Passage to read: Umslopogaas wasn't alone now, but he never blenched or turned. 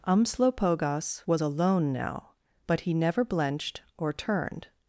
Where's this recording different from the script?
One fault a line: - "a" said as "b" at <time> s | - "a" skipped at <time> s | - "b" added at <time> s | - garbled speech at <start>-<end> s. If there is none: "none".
- "wasn't" said as "was" at 1.3 s